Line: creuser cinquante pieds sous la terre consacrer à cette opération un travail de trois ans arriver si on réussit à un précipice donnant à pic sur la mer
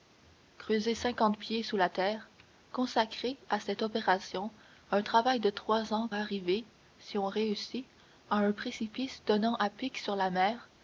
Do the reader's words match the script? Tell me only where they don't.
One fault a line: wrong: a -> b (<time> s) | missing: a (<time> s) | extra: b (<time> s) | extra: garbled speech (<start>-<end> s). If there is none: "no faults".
no faults